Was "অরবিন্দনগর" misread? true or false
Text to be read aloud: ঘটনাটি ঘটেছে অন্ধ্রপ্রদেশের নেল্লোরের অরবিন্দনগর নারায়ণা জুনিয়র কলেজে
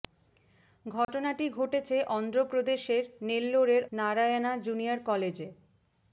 true